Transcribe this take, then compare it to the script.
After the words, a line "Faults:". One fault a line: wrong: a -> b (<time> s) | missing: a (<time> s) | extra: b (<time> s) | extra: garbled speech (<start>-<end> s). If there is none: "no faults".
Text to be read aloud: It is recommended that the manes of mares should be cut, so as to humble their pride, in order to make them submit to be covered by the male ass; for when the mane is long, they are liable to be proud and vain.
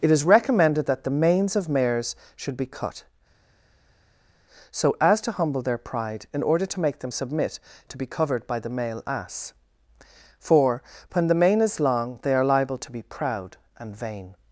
It is recommended that the manes of mares should be cut, so as to humble their pride, in order to make them submit to be covered by the male ass; for when the mane is long, they are liable to be proud and vain.
Faults:
no faults